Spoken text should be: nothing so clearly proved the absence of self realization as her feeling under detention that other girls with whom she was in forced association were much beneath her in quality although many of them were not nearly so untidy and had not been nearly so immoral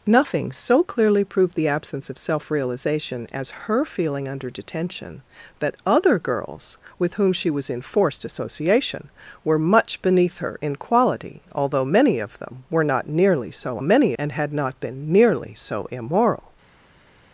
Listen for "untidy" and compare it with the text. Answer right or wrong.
wrong